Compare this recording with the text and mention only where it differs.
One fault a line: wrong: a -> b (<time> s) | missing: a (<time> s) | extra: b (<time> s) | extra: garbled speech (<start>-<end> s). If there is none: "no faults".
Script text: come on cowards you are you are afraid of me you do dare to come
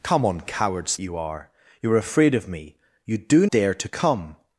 no faults